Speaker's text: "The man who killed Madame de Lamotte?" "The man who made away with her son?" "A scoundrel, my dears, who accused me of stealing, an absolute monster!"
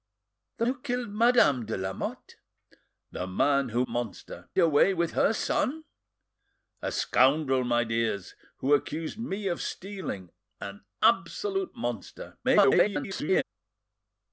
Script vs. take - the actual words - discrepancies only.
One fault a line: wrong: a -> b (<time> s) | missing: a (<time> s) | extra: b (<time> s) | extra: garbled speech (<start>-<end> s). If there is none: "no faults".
missing: man (0.7 s)
wrong: made -> monster (3.9 s)
extra: garbled speech (12.4-13.4 s)